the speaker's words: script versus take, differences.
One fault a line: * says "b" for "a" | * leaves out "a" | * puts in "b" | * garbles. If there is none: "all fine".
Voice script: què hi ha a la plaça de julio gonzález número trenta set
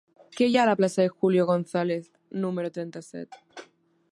all fine